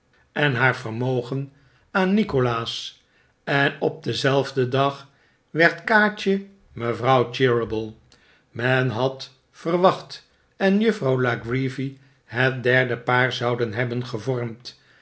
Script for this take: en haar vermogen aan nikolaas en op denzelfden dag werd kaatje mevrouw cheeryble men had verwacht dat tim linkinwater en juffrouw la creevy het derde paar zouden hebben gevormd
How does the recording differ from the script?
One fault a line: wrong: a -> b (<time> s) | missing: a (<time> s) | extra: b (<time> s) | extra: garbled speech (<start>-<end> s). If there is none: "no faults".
missing: dat tim linkinwater (10.3 s)